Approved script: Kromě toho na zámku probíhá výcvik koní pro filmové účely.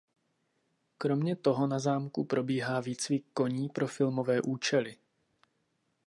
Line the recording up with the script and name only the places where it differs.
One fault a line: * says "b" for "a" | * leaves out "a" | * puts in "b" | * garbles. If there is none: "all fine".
all fine